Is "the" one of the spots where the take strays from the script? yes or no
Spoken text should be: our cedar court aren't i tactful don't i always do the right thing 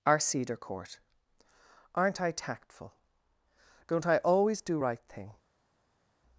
yes